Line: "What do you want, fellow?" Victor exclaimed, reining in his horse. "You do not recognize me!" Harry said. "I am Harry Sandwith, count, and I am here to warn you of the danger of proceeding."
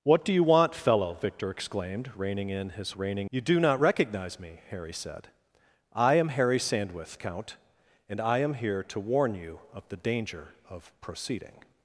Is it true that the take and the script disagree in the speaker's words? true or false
true